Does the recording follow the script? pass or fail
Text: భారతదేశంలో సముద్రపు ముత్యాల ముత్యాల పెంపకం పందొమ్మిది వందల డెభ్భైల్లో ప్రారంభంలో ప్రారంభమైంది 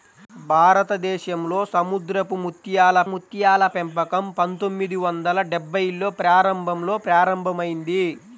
pass